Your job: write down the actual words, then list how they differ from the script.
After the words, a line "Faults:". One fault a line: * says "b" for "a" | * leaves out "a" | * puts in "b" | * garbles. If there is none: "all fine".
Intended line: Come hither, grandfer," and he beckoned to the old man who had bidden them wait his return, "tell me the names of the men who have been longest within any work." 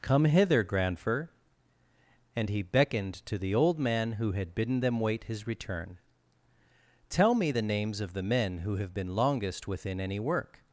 Come hither, grandfer," and he beckoned to the old man who had bidden them wait his return, "tell me the names of the men who have been longest within any work."
Faults:
all fine